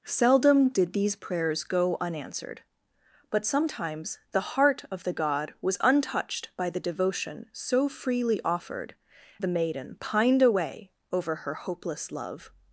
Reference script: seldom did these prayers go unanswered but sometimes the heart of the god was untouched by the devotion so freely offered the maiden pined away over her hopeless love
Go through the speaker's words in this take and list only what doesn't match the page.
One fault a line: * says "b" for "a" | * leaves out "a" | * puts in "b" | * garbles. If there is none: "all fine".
all fine